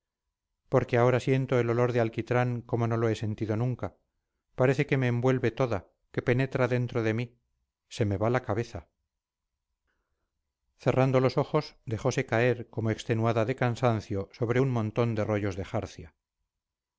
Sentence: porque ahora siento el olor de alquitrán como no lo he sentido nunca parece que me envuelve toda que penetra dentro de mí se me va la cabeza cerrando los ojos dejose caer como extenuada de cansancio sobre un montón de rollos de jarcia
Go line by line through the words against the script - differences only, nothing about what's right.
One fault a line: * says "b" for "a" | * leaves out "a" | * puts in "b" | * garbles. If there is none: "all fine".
all fine